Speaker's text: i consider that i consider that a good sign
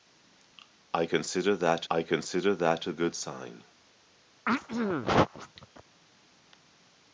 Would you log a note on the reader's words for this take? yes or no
no